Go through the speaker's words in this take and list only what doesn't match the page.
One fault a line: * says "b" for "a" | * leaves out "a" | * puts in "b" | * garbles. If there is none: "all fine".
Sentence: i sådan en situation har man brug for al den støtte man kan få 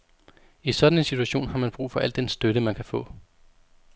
all fine